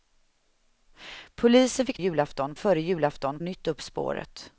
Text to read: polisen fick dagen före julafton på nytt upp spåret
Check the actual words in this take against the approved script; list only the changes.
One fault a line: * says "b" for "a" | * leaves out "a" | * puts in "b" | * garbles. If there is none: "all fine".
* says "julafton" for "dagen"
* leaves out "på"